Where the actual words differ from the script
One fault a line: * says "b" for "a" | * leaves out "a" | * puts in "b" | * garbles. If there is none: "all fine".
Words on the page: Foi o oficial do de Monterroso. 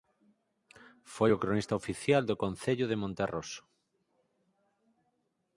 * puts in "cronista"
* puts in "concello"